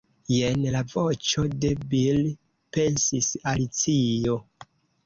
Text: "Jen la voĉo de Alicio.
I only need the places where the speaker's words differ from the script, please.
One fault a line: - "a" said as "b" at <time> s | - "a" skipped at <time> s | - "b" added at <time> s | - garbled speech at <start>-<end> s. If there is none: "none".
- "Bil pensis" added at 1.9 s